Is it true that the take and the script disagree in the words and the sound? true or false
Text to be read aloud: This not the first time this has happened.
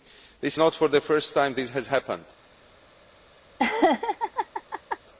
true